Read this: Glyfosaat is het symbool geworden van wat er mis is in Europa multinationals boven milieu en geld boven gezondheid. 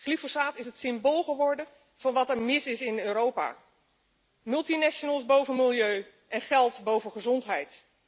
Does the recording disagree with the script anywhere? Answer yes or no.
no